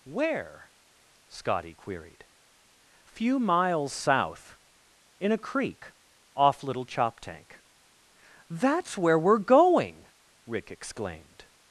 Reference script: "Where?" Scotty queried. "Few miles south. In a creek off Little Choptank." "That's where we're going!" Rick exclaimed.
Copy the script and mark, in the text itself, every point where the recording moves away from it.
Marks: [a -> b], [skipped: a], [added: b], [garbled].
"Where?" Scotty queried. "Few miles south. In a creek off Little Choptank." "That's where we're going!" Rick exclaimed.